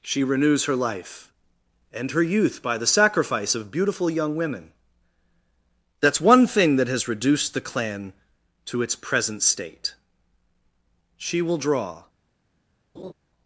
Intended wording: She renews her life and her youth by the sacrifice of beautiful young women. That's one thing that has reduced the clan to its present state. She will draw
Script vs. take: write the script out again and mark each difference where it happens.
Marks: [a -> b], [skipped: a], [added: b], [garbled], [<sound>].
She renews her life and her youth by the sacrifice of beautiful young women. That's one thing that has reduced the clan to its present state. She will draw [laugh]